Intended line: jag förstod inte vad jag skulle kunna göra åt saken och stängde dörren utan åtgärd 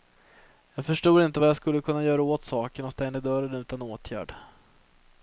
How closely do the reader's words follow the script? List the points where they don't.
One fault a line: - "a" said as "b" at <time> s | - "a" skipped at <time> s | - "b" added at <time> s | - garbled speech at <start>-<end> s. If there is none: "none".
none